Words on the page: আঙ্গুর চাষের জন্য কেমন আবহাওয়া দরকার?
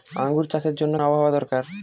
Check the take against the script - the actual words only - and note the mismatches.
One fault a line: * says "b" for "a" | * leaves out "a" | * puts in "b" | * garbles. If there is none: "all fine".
* leaves out "কেমন"